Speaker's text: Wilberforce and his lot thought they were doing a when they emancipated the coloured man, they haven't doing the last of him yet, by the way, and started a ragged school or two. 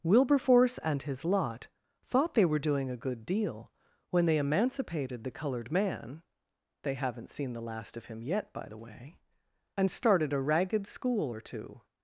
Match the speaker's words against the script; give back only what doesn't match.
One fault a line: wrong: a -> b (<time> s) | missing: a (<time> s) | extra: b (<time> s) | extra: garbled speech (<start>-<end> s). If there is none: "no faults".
extra: good deal (3.0 s)
wrong: doing -> seen (7.3 s)